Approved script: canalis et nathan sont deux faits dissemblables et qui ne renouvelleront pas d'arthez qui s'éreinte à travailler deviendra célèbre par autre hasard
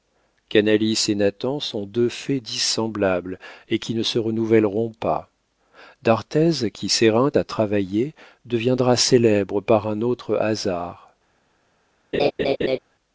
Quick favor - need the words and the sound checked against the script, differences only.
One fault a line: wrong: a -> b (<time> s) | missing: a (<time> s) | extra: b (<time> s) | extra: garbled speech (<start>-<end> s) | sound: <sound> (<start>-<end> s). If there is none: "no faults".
extra: se (4.0 s)
extra: un (9.9 s)
sound: laugh (12.1-12.8 s)